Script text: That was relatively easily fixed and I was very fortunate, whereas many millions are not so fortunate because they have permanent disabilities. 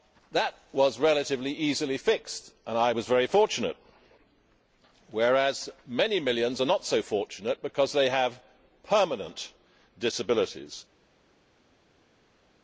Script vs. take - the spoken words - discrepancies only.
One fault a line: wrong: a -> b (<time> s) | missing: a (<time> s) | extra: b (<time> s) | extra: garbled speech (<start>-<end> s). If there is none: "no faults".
no faults